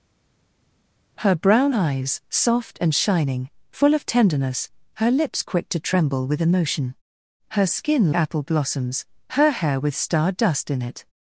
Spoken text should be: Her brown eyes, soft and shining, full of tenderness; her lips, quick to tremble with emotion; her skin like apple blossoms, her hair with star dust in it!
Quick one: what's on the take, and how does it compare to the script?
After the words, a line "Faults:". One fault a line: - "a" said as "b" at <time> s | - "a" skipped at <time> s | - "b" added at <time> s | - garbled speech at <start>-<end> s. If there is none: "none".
Her brown eyes, soft and shining, full of tenderness; her lips, quick to tremble with emotion; her skin apple blossoms, her hair with star dust in it!
Faults:
- "like" skipped at 8.1 s